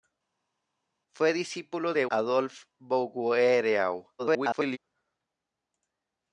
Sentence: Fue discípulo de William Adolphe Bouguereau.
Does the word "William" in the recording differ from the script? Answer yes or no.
yes